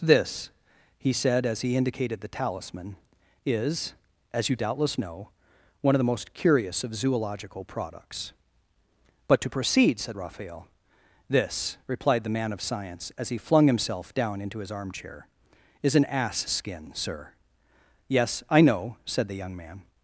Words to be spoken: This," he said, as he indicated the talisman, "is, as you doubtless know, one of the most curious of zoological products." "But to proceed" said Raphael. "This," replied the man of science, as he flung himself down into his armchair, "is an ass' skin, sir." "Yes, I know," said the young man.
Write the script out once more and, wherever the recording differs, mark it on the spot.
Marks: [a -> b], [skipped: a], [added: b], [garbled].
This," he said, as he indicated the talisman, "is, as you doubtless know, one of the most curious of zoological products." "But to proceed" said Raphael. "This," replied the man of science, as he flung himself down into his armchair, "is an ass' skin, sir." "Yes, I know," said the young man.